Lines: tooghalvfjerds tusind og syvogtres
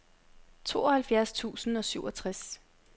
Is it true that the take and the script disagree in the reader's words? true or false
false